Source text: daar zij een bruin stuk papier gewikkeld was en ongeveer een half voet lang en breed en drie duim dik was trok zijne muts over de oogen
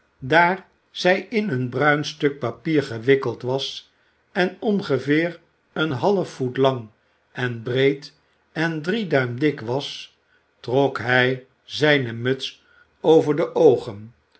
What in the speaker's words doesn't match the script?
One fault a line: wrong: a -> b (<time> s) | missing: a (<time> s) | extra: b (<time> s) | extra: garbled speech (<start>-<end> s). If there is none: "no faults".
extra: in (1.3 s)
extra: hij (11.0 s)